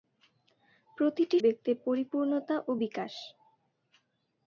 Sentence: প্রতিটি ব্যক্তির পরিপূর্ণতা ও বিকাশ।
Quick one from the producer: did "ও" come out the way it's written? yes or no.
yes